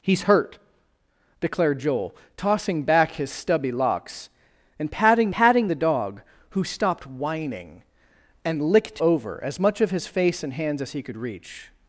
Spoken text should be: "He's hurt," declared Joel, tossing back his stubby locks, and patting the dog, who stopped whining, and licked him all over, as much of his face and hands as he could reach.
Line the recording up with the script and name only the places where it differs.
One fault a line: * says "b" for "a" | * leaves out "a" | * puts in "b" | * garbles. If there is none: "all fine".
* puts in "patting"
* leaves out "him all"